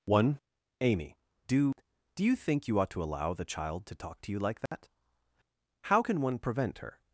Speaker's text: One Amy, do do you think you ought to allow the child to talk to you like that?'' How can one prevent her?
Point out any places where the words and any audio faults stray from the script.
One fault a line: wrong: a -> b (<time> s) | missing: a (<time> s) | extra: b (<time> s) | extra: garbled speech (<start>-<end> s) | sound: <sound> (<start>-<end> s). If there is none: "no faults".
sound: dropout (4.7-4.7 s)